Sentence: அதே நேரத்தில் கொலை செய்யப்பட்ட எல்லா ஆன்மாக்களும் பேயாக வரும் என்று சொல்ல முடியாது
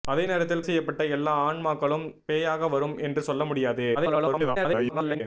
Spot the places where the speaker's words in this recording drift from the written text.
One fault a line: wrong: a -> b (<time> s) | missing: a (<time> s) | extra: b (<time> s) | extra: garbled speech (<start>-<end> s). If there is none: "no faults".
missing: கொலை (0.7 s)
extra: garbled speech (3.9-5.2 s)